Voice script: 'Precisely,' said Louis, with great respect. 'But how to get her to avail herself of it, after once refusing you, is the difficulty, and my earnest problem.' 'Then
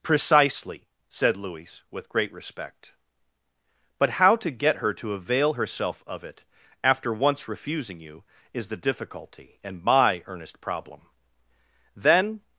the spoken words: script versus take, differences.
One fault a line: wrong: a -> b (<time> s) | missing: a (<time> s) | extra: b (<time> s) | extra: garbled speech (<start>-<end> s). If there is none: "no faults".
no faults